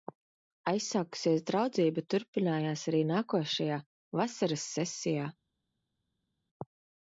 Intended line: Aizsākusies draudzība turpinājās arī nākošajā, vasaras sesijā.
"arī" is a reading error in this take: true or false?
false